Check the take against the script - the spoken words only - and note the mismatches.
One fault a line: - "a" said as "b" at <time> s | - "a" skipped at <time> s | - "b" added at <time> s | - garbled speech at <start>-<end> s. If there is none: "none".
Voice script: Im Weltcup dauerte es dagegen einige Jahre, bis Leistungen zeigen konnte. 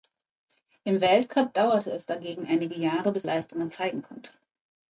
none